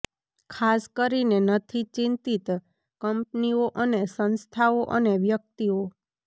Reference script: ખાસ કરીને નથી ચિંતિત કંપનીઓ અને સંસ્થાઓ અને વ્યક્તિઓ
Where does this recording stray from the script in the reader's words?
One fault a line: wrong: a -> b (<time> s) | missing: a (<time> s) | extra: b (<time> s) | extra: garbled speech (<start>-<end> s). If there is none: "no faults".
no faults